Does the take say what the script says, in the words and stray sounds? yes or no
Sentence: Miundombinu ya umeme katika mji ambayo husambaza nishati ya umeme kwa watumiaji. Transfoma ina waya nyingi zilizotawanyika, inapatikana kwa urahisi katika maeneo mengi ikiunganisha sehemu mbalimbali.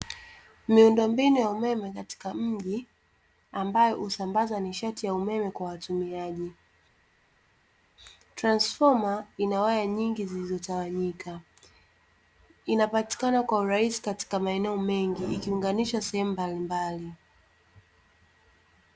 yes